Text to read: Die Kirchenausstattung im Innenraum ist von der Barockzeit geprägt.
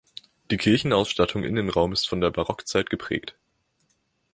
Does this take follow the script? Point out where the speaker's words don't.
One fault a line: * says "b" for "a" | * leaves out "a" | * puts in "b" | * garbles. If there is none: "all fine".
* leaves out "im"